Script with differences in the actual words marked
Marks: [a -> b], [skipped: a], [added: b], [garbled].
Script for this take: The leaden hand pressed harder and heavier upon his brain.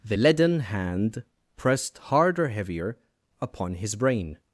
The leaden hand pressed harder [skipped: and] heavier upon his brain.